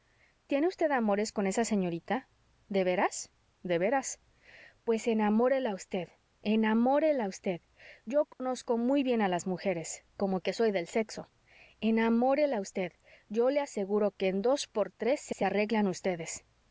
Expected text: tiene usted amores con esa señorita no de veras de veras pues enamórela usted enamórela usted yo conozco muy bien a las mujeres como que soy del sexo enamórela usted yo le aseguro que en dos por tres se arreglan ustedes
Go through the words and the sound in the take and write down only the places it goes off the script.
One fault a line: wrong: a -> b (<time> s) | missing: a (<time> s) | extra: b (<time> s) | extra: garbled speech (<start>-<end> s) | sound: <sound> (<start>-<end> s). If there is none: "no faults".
missing: no (2.3 s)
sound: dropout (8.3-8.4 s)
extra: se (15.3 s)